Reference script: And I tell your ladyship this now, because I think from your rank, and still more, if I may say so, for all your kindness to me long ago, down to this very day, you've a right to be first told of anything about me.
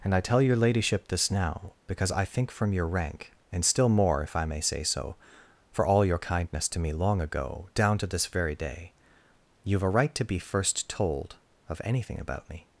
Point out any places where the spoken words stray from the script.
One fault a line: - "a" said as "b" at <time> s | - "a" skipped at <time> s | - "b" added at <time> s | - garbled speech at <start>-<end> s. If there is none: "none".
none